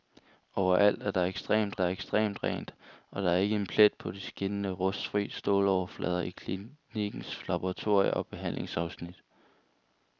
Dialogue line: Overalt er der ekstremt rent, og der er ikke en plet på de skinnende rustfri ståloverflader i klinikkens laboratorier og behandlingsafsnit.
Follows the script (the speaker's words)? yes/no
no